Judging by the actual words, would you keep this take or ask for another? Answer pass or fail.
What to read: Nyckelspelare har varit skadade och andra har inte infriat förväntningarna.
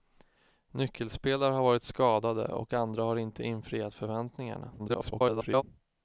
fail